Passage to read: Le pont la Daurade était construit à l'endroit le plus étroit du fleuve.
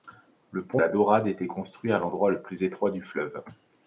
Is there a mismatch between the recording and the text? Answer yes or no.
no